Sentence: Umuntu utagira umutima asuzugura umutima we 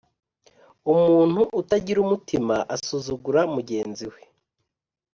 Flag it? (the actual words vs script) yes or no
yes